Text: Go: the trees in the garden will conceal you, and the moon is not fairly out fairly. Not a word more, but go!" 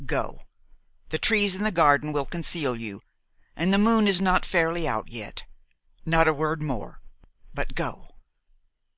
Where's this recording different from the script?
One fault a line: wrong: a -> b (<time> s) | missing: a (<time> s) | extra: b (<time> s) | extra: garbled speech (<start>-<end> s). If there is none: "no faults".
wrong: fairly -> yet (5.1 s)